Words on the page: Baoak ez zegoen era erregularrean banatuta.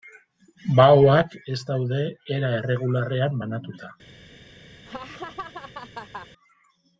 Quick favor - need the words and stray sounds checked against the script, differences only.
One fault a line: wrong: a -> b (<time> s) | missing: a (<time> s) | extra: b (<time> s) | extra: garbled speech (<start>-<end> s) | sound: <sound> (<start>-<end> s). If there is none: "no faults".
wrong: zegoen -> daude (1.7 s)
sound: laugh (4.9-6.3 s)